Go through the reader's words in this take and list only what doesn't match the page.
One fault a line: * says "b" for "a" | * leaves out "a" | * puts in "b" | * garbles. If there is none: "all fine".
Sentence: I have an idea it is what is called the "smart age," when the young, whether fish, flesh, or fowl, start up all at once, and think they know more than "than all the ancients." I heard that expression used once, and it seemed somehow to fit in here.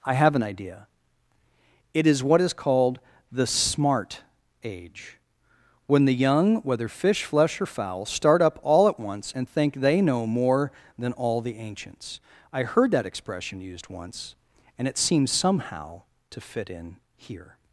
* leaves out "than"
* says "seems" for "seemed"